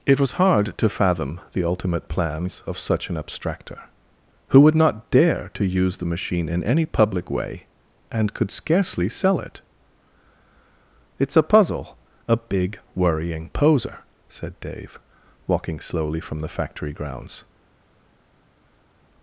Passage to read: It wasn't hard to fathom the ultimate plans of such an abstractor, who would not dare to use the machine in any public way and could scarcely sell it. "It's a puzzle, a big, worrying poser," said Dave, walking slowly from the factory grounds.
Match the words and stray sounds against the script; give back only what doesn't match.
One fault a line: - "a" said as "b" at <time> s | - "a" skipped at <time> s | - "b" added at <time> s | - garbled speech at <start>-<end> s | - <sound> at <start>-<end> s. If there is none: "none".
- "wasn't" said as "was" at 0.2 s